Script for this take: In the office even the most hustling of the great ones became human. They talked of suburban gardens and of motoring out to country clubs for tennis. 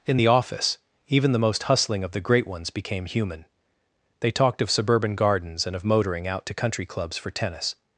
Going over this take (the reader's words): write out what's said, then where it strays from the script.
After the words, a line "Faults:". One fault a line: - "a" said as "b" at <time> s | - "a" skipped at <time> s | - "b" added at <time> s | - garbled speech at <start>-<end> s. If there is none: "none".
In the office even the most hustling of the great ones became human. They talked of suburban gardens and of motoring out to country clubs for tennis.
Faults:
none